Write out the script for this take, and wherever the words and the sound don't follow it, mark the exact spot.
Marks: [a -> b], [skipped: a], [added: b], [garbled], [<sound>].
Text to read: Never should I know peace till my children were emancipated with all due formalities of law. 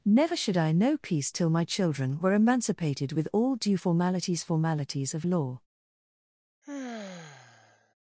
Never should I know peace till my children were emancipated with all due formalities [added: formalities] of law. [sigh]